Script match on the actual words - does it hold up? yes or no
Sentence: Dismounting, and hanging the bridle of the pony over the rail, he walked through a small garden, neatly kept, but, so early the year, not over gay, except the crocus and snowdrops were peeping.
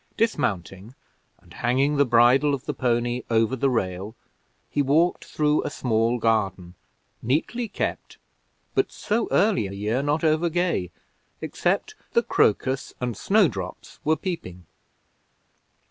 yes